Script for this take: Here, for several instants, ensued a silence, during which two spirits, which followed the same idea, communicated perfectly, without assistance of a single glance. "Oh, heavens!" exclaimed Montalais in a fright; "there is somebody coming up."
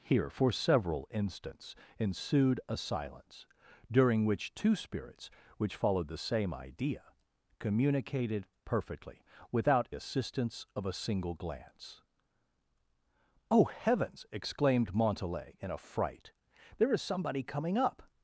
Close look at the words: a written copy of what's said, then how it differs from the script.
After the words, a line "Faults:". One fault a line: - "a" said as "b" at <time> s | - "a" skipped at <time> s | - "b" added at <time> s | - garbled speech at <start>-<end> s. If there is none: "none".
Here, for several instants, ensued a silence, during which two spirits, which followed the same idea, communicated perfectly, without assistance of a single glance. "Oh, heavens!" exclaimed Montalais in a fright; "there is somebody coming up."
Faults:
none